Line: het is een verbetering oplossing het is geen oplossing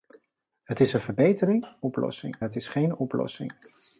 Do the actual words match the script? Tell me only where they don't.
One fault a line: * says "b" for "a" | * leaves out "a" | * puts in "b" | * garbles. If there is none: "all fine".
all fine